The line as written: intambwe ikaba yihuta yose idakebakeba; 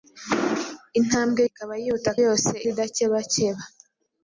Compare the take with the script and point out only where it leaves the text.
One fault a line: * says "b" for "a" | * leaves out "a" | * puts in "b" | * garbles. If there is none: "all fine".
all fine